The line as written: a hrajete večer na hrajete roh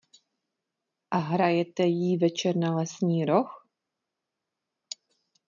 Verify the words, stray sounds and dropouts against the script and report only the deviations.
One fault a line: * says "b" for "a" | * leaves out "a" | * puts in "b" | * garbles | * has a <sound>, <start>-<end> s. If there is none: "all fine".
* puts in "jí"
* says "lesní" for "hrajete"